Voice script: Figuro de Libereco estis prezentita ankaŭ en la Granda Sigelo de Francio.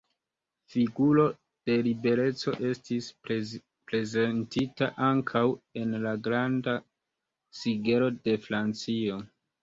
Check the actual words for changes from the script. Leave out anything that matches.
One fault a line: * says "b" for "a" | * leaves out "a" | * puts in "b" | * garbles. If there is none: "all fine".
all fine